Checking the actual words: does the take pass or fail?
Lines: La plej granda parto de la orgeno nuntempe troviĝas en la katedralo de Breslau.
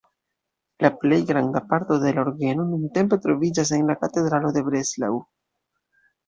pass